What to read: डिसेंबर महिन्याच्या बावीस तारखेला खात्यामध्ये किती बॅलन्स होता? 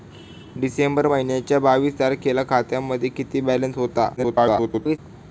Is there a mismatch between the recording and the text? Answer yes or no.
yes